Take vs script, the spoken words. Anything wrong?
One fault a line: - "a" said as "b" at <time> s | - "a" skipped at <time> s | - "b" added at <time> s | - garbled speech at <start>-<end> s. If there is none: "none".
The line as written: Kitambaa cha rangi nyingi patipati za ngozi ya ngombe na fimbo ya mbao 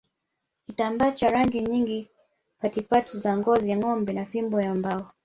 none